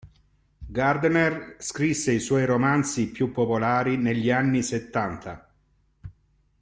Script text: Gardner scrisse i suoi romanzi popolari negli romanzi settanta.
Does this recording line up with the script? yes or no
no